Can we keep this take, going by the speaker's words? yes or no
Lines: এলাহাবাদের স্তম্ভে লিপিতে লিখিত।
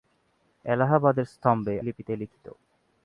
yes